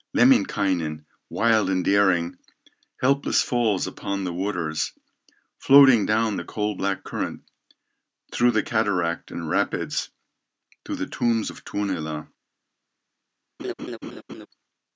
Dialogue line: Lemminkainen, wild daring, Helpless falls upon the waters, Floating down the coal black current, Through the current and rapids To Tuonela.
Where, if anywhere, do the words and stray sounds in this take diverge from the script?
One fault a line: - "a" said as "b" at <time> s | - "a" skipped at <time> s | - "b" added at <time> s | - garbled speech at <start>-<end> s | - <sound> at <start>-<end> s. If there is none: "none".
- "and" added at 1.7 s
- "current" said as "cataract" at 8.6 s
- "the tombs of" added at 10.9 s
- laugh at 13.6-14.5 s